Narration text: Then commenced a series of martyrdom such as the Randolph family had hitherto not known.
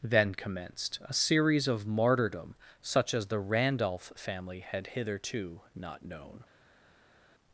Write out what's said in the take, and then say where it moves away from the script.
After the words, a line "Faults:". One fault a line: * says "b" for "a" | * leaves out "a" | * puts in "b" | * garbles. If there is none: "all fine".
Then commenced a series of martyrdom such as the Randolph family had hitherto not known.
Faults:
all fine